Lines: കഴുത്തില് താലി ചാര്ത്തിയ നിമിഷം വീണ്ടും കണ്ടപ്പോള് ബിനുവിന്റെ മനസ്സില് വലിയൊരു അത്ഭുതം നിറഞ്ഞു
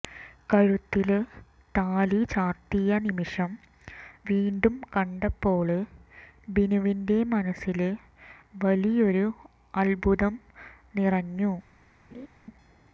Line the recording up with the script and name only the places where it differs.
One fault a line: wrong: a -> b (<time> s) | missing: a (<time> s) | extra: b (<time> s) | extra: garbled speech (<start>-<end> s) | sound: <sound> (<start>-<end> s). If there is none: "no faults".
sound: laugh (12.1-12.3 s)